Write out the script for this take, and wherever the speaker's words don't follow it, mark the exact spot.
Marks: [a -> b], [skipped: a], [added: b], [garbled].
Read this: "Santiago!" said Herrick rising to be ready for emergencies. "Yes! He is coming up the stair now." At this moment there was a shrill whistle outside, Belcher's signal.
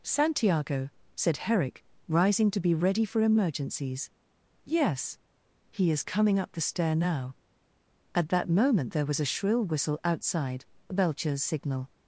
"Santiago!" said Herrick rising to be ready for emergencies. "Yes! He is coming up the stair now." At [this -> that] moment there was a shrill whistle outside, Belcher's signal.